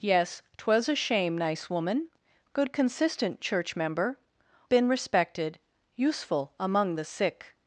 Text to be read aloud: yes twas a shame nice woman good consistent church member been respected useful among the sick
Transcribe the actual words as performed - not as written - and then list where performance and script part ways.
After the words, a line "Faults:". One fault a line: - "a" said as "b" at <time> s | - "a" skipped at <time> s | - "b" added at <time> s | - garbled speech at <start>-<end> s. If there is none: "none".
yes twas a shame nice woman good consistent church member been respected useful among the sick
Faults:
none